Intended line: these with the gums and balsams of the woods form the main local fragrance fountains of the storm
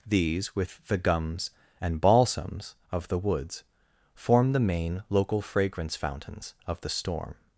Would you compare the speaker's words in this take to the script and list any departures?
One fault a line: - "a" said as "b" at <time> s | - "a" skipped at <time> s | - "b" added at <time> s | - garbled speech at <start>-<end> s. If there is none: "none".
none